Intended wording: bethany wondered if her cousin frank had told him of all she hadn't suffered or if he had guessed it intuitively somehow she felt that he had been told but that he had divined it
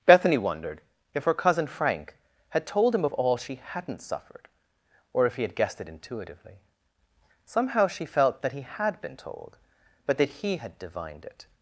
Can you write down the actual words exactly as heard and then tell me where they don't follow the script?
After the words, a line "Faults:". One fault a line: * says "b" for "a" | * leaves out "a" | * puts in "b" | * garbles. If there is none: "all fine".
bethany wondered if her cousin frank had told him of all she hadn't suffered or if he had guessed it intuitively somehow she felt that he had been told but that he had divined it
Faults:
all fine